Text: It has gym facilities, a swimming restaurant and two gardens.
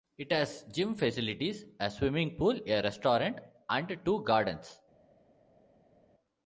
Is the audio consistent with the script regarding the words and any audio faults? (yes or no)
no